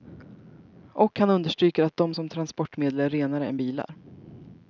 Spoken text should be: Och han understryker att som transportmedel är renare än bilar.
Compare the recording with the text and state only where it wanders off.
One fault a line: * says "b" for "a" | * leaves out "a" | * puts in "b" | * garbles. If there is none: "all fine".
* puts in "de"